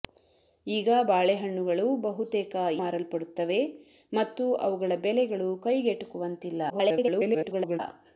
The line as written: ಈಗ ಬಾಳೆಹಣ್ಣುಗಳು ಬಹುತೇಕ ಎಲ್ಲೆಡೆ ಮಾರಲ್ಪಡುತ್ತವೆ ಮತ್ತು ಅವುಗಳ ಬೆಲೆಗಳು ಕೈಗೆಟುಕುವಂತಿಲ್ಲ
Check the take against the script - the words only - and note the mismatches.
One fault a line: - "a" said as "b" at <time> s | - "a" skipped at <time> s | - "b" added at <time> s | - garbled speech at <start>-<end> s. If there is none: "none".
- "ಎಲ್ಲೆಡೆ" skipped at 2.5 s
- garbled speech at 6.7-7.8 s